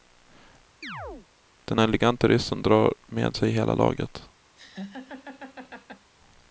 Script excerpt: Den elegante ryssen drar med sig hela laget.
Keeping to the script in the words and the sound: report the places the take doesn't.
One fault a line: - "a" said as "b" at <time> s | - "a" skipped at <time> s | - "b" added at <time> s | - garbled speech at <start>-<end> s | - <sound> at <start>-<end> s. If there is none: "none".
- chirp at 0.8-1.3 s
- laugh at 4.6-6.1 s